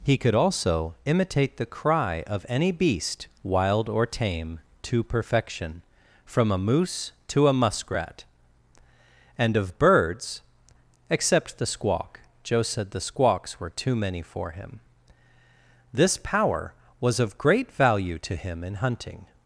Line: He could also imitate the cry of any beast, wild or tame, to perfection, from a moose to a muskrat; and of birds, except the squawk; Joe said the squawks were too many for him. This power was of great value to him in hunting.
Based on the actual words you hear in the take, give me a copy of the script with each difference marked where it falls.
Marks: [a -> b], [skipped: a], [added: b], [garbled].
He could also imitate the cry of any beast, wild or tame, to perfection, from a moose to a muskrat; and of birds, except the squawk; Joe said the squawks were too many for him. This power was of great value to him in hunting.